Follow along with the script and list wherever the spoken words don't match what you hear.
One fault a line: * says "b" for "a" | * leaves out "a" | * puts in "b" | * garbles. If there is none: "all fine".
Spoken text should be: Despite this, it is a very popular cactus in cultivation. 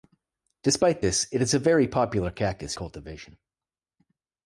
* leaves out "in"